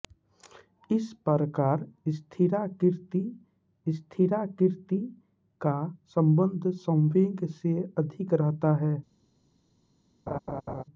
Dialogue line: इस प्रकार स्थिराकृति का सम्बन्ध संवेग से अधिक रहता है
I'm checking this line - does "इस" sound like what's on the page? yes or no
yes